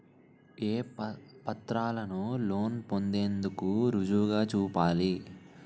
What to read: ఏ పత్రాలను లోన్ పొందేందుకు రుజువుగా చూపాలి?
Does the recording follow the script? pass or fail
pass